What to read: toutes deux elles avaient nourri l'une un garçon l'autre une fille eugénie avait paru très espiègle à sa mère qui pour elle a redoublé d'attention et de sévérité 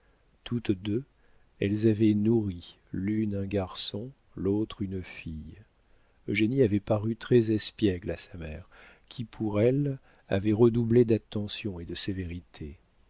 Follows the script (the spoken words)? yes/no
no